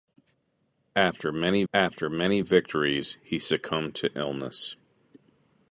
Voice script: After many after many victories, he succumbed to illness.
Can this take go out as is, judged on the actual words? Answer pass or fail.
pass